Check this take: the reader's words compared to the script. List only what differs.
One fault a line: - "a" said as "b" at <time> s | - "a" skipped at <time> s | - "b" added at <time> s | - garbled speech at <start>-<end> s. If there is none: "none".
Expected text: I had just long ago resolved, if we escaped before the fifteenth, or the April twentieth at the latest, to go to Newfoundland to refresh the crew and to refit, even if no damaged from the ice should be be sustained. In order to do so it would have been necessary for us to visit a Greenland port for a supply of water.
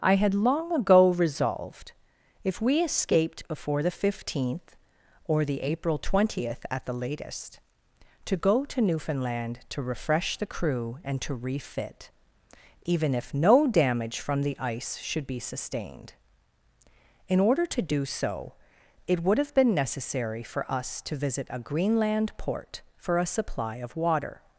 - "just" skipped at 0.3 s
- "damaged" said as "damage" at 13.7 s
- "be" skipped at 15.4 s